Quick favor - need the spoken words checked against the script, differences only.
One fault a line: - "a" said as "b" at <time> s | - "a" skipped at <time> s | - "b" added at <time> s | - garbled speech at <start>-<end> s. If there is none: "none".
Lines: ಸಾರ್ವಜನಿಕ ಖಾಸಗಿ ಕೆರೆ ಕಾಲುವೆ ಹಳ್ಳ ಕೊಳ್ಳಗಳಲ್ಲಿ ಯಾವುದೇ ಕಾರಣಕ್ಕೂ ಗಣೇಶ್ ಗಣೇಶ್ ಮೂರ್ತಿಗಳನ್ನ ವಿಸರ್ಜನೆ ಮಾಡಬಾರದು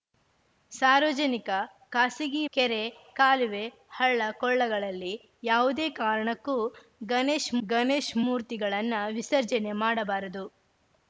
none